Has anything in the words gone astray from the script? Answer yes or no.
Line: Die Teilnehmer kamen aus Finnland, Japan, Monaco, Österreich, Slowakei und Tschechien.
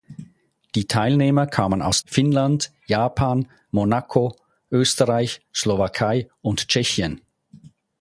no